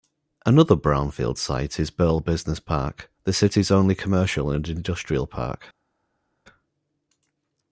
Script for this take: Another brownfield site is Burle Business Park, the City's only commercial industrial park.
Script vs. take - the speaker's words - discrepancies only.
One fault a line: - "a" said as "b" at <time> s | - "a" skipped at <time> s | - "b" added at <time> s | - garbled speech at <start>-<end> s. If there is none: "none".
- "and" added at 4.5 s